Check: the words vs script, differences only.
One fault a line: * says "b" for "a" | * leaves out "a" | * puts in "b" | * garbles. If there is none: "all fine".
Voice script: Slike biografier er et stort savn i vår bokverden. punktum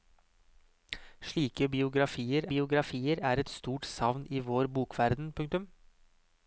* puts in "biografier"